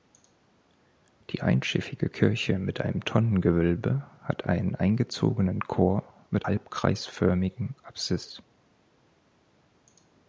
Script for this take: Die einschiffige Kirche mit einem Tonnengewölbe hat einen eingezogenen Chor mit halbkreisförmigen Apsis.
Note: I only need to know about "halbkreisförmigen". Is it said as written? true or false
true